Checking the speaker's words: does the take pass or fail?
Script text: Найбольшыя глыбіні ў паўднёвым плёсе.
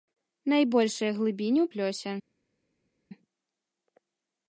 fail